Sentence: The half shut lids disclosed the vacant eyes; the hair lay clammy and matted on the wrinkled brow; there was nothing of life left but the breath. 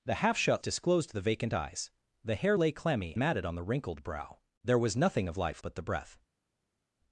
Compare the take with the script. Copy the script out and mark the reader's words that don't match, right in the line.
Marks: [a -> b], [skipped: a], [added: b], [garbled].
The half shut [skipped: lids] disclosed the vacant eyes; the hair lay clammy [skipped: and] matted on the wrinkled brow; there was nothing of life [skipped: left] but the breath.